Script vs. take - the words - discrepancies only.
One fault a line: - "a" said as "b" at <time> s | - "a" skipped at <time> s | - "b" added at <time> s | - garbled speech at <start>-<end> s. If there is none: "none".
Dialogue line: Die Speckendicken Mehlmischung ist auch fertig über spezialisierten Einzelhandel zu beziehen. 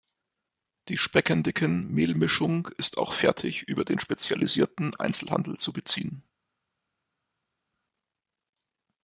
- "den" added at 3.8 s